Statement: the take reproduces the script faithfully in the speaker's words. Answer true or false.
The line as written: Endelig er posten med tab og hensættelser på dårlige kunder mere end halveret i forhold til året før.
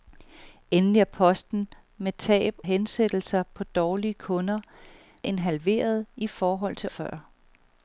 false